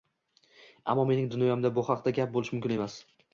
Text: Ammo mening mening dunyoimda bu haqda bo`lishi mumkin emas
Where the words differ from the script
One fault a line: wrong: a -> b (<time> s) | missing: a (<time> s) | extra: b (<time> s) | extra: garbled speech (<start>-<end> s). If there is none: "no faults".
missing: mening (1.3 s)
extra: gap (2.2 s)